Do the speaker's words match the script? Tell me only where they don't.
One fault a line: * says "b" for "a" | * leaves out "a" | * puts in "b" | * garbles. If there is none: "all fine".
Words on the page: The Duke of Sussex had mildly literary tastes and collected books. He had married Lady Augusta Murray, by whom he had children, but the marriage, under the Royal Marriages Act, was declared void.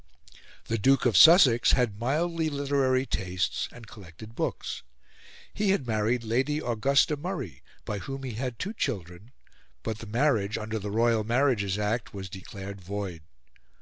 * puts in "two"